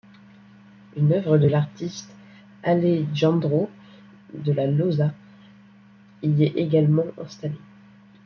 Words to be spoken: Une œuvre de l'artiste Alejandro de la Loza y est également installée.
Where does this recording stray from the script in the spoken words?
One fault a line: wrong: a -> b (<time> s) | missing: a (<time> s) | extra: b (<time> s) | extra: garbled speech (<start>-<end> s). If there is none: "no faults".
no faults